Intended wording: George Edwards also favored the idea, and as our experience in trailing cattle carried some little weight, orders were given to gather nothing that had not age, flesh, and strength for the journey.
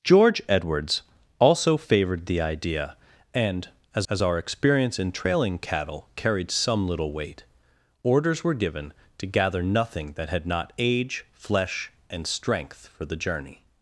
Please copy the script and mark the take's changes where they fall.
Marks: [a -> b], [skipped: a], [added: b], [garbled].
George Edwards also favored the idea, and as [added: as] our experience in trailing cattle carried some little weight, orders were given to gather nothing that had not age, flesh, and strength for the journey.